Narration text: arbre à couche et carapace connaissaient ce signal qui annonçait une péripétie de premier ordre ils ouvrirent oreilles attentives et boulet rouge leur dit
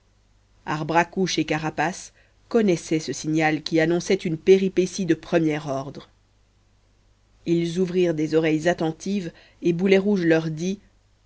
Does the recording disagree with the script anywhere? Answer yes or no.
yes